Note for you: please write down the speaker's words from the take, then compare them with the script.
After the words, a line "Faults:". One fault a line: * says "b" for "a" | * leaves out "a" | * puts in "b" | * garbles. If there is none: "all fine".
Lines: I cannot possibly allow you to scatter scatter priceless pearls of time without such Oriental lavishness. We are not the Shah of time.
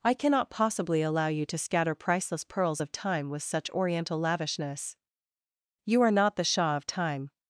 I cannot possibly allow you to scatter priceless pearls of time with such Oriental lavishness. You are not the Shah of time.
Faults:
* leaves out "scatter"
* says "with" for "without"
* says "You" for "We"